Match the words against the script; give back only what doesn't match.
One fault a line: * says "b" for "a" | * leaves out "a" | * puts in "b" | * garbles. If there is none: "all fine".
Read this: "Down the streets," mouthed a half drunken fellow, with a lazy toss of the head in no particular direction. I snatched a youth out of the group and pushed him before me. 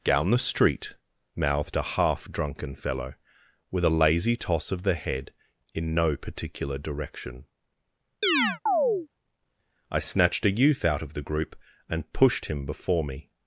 * says "street" for "streets"